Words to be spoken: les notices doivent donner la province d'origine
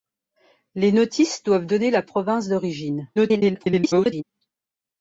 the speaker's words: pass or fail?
fail